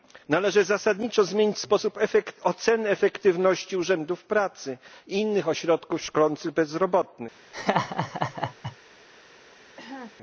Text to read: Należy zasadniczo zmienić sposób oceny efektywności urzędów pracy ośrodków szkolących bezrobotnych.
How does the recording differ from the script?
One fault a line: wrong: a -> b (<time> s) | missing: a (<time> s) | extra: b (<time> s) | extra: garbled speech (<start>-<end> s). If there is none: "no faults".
extra: i innych (5.1 s)